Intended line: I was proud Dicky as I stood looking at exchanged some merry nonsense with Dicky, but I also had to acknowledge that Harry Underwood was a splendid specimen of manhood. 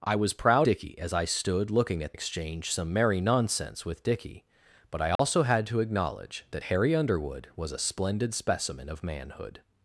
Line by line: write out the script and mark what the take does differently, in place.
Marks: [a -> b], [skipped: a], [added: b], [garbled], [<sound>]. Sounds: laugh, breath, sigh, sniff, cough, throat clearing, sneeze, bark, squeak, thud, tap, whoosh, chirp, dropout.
I was proud Dicky as I stood looking at exchanged some merry nonsense with Dicky, but I also [dropout] had to acknowledge that Harry Underwood was a splendid specimen of manhood.